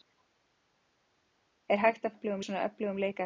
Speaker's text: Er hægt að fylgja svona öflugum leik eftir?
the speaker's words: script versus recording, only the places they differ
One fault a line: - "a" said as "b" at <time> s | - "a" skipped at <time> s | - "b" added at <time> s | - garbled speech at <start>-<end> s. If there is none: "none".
- "fylgja" said as "öflugum" at 2.1 s